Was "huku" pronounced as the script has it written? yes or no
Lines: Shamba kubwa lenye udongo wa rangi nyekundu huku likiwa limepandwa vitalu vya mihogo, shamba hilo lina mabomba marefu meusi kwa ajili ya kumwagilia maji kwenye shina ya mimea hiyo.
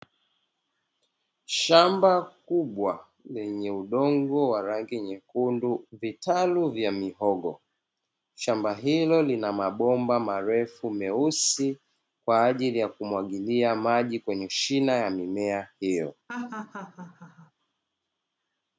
no